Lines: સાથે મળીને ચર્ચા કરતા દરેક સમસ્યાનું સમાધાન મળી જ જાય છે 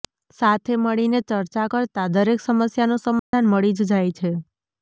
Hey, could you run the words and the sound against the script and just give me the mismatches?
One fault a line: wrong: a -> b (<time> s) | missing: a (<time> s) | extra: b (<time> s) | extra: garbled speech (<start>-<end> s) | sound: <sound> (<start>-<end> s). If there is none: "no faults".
sound: dropout (3.2-3.3 s)